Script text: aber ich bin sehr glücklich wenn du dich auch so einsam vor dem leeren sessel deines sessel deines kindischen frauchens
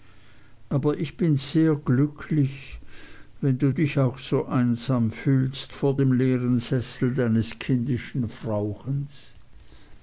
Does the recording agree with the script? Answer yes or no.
no